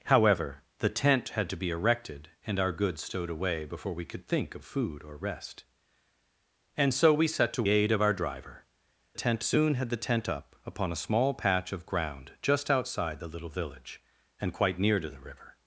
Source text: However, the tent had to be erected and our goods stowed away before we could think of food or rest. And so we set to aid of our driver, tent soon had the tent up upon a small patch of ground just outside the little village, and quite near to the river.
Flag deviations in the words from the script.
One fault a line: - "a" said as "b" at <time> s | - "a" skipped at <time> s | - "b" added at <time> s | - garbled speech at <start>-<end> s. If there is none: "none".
none